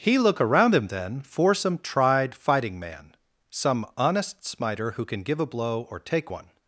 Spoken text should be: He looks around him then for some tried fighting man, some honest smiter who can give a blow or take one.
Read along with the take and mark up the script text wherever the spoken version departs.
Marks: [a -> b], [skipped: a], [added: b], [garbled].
He [looks -> look] around him then for some tried fighting man, some honest smiter who can give a blow or take one.